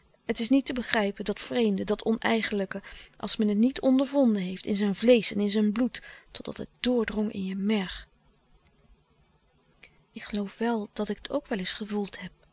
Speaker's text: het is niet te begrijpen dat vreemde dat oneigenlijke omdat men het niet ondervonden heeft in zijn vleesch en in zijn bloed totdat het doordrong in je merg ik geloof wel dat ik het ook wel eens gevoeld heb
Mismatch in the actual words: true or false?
true